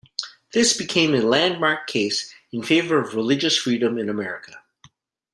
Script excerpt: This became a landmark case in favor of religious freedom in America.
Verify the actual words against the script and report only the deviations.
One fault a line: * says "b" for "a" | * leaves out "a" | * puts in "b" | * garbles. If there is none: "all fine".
all fine